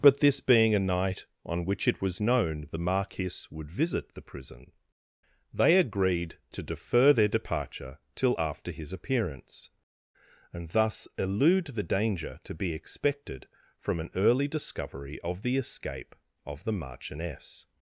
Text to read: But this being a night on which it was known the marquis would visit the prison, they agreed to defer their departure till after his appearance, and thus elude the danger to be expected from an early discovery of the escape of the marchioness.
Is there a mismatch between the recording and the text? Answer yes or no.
no